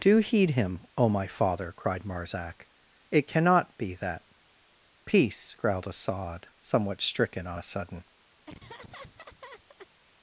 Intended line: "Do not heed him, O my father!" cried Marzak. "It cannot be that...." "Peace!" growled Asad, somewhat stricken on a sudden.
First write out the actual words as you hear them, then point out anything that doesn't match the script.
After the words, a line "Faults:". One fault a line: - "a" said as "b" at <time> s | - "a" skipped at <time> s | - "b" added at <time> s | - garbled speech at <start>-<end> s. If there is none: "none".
"Do heed him, O my father!" cried Marzak. "It cannot be that...." "Peace!" growled Asad, somewhat stricken on a sudden.
Faults:
- "not" skipped at 0.2 s